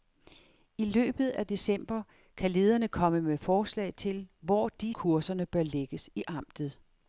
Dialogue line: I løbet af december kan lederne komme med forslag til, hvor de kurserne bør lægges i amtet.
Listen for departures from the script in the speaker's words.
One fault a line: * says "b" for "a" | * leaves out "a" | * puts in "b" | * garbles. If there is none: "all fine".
all fine